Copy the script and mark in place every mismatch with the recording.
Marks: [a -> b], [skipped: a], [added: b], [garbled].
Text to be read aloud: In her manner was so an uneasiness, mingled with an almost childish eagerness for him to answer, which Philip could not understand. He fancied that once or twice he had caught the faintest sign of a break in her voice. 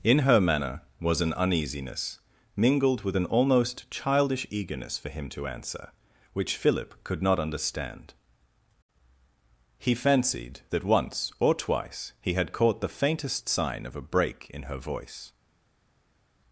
In her manner was [skipped: so] an uneasiness, mingled with an almost childish eagerness for him to answer, which Philip could not understand. He fancied that once or twice he had caught the faintest sign of a break in her voice.